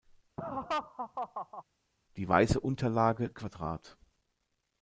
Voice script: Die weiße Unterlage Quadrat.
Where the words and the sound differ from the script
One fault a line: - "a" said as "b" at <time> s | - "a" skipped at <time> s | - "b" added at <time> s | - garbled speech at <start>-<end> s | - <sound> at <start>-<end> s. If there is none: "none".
- laugh at 0.4-1.6 s